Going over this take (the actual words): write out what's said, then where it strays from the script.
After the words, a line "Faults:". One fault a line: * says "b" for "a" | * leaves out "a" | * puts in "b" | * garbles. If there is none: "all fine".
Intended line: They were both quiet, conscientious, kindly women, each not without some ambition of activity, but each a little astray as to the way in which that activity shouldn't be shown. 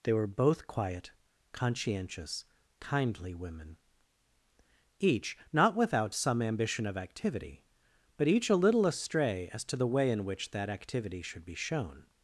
They were both quiet, conscientious, kindly women, each not without some ambition of activity, but each a little astray as to the way in which that activity should be shown.
Faults:
* says "should" for "shouldn't"